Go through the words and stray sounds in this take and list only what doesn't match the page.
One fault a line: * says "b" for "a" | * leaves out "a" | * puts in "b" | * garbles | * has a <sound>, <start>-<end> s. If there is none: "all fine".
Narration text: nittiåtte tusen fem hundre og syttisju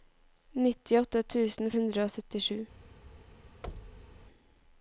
* leaves out "fem"
* has a thud, 3.6-4.2 s